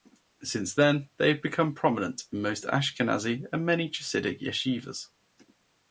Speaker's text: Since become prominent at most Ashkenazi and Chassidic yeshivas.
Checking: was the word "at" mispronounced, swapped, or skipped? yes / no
yes